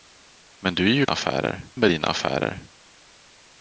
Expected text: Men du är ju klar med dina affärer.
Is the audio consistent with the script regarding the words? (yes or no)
no